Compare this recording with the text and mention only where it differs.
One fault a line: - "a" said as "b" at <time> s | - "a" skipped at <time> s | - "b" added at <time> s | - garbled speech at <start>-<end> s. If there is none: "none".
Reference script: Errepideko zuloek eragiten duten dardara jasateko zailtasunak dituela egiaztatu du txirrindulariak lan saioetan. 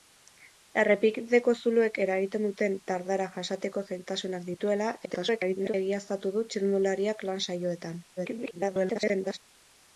- garbled speech at 5.0-5.7 s
- garbled speech at 8.2-9.4 s